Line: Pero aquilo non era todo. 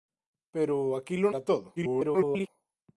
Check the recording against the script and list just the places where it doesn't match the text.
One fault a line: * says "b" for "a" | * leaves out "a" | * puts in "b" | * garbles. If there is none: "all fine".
* leaves out "non"
* garbles